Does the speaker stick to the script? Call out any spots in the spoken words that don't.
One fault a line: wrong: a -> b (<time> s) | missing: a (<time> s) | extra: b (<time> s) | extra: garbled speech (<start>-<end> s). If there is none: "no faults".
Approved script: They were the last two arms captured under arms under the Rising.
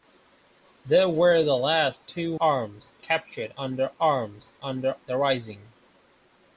no faults